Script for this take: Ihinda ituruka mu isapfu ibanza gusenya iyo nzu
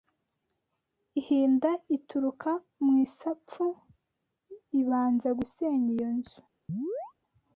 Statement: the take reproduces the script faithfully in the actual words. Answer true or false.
true